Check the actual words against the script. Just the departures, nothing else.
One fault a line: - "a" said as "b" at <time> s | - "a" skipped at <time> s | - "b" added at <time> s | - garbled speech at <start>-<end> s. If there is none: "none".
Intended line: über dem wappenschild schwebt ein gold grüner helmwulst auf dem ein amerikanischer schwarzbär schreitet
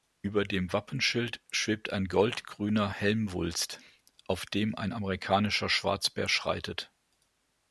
none